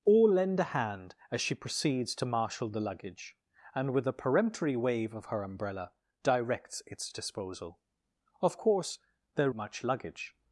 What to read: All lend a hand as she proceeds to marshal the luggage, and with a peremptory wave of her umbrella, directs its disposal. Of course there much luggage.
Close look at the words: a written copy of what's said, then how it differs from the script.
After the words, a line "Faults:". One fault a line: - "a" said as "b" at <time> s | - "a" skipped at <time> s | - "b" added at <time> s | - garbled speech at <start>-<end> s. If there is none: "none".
All lend a hand as she proceeds to marshal the luggage, and with a peremptory wave of her umbrella, directs its disposal. Of course there much luggage.
Faults:
none